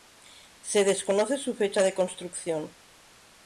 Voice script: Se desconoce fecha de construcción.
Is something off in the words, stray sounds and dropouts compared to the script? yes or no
yes